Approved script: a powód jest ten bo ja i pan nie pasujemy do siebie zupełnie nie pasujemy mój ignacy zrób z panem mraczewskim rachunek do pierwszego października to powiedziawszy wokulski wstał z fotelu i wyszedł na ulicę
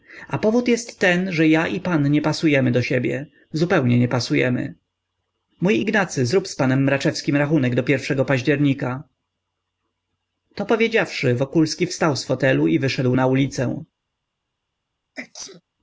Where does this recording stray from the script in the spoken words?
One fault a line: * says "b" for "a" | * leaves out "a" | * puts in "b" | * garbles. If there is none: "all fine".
* says "że" for "bo"